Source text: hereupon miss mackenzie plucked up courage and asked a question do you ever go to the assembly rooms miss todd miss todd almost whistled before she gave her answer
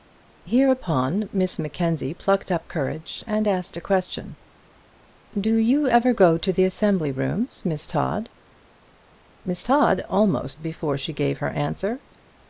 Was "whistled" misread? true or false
true